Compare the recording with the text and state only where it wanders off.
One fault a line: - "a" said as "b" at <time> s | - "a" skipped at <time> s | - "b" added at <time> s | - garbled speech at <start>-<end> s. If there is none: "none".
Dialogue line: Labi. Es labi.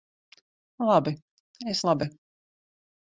none